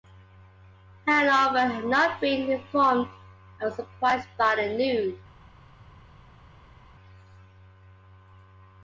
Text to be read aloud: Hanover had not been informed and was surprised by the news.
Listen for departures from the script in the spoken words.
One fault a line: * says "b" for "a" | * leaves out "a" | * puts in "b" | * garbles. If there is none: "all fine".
all fine